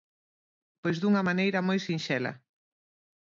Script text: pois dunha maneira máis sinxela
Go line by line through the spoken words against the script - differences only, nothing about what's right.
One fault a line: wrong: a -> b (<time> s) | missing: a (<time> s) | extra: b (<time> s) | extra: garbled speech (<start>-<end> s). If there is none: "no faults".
wrong: máis -> moi (1.7 s)